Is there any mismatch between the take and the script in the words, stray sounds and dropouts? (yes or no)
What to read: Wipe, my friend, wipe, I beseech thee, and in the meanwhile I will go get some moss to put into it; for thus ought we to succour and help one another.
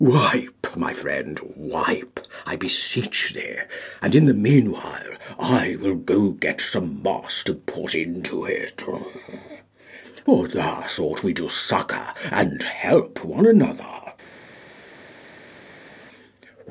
no